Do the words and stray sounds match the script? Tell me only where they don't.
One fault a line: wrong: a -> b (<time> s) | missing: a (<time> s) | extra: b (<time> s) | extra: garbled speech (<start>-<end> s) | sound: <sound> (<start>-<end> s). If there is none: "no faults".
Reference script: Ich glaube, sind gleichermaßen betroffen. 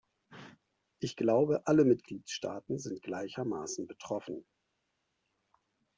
extra: alle Mitgliedstaaten (1.6 s)